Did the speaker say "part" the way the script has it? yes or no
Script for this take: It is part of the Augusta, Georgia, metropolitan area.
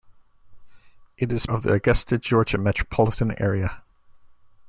no